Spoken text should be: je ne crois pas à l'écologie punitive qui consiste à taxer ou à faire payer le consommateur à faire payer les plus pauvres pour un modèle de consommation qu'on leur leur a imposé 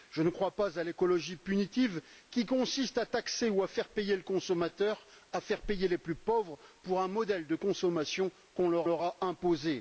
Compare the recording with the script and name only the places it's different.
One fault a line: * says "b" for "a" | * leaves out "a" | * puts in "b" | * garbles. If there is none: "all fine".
all fine